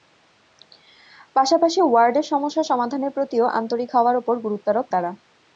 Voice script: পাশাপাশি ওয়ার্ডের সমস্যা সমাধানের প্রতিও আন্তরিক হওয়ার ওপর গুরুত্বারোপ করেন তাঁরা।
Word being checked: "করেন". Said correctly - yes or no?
no